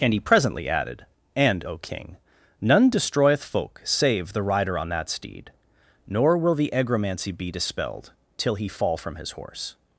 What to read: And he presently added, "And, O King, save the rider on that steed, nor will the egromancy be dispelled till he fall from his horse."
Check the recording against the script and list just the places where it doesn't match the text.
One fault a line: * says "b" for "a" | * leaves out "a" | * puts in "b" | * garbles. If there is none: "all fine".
* puts in "none destroyeth folk"